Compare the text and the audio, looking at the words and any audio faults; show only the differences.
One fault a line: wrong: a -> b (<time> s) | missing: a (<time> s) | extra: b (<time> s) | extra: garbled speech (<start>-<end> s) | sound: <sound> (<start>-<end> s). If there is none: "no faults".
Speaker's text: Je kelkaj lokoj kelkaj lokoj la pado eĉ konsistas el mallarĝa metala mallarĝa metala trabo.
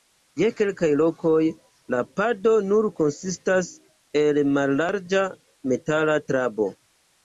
missing: kelkaj lokoj (1.4 s)
wrong: eĉ -> nur (2.7 s)
missing: mallarĝa metala (6.2 s)